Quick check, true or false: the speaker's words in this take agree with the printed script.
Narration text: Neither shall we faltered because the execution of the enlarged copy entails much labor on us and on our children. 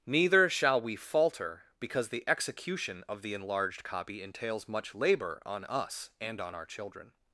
false